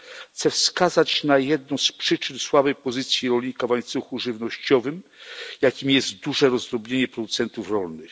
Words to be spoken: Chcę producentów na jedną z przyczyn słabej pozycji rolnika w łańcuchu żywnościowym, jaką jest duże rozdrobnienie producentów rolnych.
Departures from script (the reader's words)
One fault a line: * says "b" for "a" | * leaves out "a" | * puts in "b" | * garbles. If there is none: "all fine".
* says "wskazać" for "producentów"